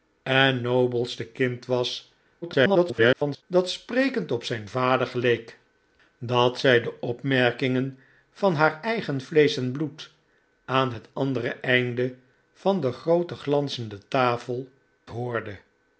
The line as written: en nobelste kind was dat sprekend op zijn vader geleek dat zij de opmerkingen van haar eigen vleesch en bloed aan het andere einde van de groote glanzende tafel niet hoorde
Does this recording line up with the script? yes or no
no